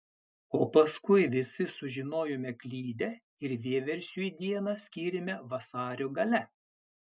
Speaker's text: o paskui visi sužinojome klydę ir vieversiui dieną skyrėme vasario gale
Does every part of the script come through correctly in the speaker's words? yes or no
yes